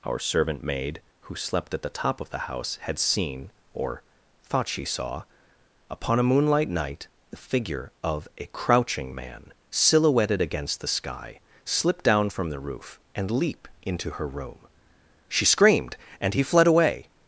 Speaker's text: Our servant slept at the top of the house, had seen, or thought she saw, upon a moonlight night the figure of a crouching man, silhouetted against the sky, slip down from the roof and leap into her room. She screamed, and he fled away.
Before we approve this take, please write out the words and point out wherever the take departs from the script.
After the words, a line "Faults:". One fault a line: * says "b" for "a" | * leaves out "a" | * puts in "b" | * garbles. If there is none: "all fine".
Our servant maid, who slept at the top of the house, had seen, or thought she saw, upon a moonlight night the figure of a crouching man, silhouetted against the sky, slip down from the roof and leap into her room. She screamed, and he fled away.
Faults:
* puts in "maid who"